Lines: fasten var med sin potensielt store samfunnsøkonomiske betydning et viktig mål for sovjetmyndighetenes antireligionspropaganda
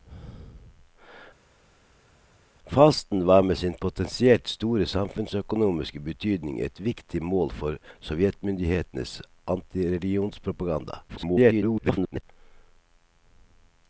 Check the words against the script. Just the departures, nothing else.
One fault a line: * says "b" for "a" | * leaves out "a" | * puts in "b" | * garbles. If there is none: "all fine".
* garbles